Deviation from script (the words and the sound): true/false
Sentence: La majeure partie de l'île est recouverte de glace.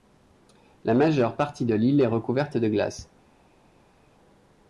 false